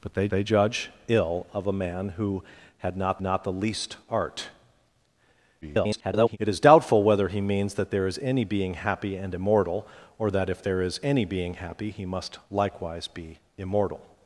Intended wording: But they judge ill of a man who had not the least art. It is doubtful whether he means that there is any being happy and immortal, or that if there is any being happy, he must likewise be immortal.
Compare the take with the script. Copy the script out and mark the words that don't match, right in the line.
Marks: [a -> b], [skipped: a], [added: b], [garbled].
But they [added: they] judge ill of a man who had not [added: not] the least art. [garbled] It is doubtful whether he means that there is any being happy and immortal, or that if there is any being happy, he must likewise be immortal.